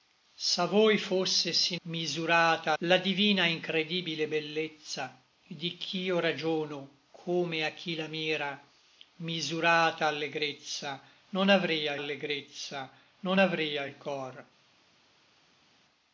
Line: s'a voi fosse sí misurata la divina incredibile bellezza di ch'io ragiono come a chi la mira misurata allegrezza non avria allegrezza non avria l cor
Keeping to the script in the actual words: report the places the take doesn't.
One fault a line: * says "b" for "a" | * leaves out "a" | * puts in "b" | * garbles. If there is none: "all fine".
all fine